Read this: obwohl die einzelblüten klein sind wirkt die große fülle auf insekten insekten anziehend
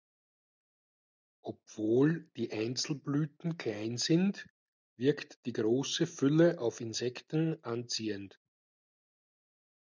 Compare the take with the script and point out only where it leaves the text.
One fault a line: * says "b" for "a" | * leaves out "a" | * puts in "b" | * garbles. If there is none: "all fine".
* leaves out "insekten"